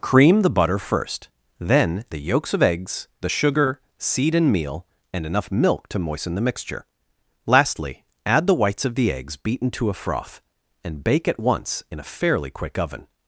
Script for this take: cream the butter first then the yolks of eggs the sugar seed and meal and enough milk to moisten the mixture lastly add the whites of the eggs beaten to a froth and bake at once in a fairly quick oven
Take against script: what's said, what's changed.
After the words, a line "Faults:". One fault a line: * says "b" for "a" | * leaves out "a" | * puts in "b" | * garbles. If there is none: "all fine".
cream the butter first then the yolks of eggs the sugar seed and meal and enough milk to moisten the mixture lastly add the whites of the eggs beaten to a froth and bake at once in a fairly quick oven
Faults:
all fine